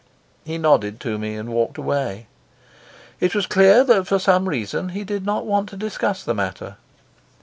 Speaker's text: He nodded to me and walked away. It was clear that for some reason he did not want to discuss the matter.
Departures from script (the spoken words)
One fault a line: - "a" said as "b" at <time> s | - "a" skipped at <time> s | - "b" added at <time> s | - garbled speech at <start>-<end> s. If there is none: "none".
none